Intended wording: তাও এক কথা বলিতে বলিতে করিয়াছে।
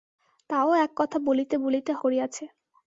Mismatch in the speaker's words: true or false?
false